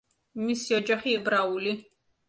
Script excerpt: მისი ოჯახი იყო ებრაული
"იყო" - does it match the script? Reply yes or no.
no